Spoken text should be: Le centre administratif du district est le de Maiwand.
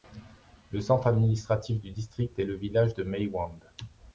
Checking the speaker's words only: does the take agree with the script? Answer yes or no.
no